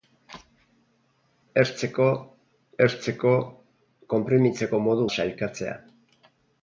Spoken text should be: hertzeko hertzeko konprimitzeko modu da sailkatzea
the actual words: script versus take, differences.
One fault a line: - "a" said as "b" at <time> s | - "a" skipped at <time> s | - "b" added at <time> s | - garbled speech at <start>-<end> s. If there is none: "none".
none